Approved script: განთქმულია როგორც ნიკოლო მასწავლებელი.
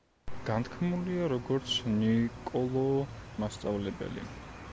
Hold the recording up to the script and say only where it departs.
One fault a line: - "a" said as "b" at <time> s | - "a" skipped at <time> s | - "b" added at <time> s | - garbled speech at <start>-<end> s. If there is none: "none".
none